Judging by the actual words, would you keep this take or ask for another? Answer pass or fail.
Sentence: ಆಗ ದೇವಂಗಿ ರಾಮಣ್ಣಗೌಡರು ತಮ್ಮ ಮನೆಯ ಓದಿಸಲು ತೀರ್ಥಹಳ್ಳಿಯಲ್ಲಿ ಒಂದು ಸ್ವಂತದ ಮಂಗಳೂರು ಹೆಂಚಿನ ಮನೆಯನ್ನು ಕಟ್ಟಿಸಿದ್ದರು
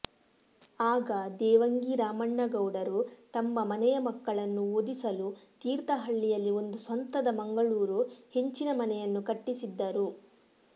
fail